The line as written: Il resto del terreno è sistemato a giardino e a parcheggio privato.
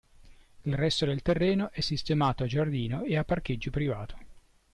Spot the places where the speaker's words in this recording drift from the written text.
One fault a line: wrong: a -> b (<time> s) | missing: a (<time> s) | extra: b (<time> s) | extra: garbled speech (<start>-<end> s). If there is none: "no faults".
no faults